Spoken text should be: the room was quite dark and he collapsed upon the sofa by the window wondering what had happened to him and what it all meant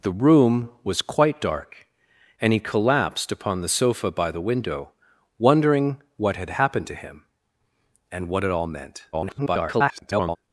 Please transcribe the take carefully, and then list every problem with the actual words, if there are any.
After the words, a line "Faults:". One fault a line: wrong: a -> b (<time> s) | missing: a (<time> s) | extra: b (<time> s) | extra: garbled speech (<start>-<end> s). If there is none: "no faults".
the room was quite dark and he collapsed upon the sofa by the window wondering what had happened to him and what it all meant [garbled]
Faults:
extra: garbled speech (9.1-10.4 s)